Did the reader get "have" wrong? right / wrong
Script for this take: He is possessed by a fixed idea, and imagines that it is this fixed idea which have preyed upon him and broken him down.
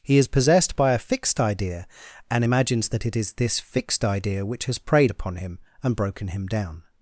wrong